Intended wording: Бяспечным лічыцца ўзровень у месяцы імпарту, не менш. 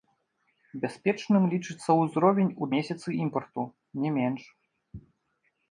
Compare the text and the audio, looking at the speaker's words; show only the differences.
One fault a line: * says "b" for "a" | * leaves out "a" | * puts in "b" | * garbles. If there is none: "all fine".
all fine